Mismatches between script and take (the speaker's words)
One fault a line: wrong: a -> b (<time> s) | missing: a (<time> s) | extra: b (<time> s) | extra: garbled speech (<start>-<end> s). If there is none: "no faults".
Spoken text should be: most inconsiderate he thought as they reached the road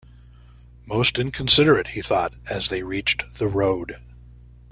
no faults